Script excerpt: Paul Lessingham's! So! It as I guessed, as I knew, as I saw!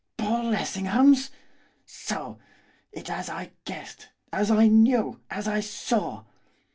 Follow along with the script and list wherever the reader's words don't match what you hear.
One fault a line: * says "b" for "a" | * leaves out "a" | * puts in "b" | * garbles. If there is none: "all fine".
all fine